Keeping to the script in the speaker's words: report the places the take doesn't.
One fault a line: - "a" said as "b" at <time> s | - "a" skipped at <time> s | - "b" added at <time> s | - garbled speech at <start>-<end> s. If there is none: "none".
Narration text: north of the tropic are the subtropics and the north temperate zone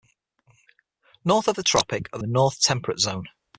- "subtropics and" skipped at 2.2 s